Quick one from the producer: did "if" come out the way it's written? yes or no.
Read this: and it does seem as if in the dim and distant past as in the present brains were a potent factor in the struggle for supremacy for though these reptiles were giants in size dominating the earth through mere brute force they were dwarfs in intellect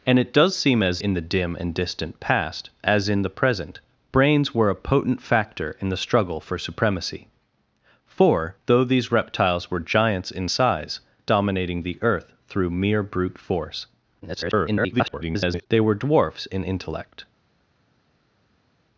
no